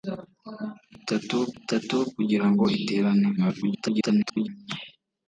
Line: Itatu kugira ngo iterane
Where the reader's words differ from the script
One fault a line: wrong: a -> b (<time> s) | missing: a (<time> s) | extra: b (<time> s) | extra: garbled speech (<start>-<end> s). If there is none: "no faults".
extra: itatu (1.6 s)
extra: garbled speech (3.4-4.5 s)